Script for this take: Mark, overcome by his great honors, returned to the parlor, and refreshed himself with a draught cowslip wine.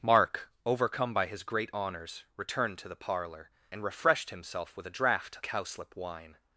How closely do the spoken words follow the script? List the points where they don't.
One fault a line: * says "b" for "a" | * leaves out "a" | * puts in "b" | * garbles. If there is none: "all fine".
all fine